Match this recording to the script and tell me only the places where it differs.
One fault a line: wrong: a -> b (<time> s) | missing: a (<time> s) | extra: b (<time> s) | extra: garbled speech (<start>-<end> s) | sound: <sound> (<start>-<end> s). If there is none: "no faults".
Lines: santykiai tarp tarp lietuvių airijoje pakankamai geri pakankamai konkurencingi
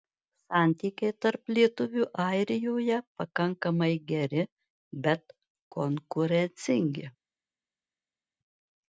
missing: tarp (1.5 s)
wrong: pakankamai -> bet (5.0 s)